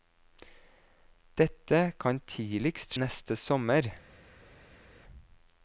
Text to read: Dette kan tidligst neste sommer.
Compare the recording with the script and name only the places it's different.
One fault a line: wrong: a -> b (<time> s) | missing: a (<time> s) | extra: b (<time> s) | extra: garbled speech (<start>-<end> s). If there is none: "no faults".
no faults